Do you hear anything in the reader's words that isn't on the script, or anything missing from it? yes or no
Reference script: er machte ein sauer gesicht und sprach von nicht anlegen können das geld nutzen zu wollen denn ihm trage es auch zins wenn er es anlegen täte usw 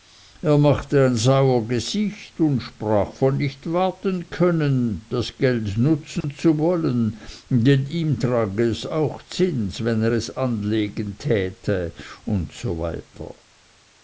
yes